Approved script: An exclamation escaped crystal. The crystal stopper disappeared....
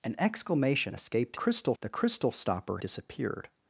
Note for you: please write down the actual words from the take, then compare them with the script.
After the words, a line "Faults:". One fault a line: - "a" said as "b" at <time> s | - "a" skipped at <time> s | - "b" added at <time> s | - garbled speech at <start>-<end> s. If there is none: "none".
An exclamation escaped crystal. The crystal stopper disappeared....
Faults:
none